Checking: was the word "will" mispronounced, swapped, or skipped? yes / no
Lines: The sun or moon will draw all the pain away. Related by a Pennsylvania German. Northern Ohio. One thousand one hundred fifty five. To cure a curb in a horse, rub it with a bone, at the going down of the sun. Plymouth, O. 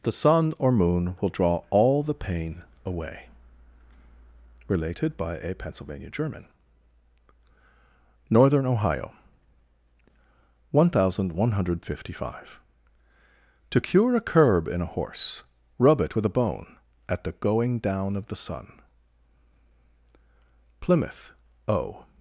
no